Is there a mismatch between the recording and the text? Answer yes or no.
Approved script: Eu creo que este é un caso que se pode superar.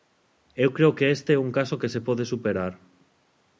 no